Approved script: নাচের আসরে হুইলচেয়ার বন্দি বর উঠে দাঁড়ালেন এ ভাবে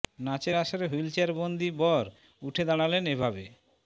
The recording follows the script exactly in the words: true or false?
true